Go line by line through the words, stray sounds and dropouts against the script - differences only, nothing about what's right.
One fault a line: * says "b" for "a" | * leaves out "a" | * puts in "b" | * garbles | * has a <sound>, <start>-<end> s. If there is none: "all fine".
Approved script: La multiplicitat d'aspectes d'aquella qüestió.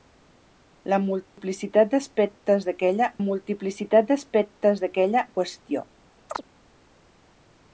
* has a dropout, 1.3-1.4 s
* puts in "multiplicitat d'aspectes d'aquella"
* has a chirp, 6.3-6.4 s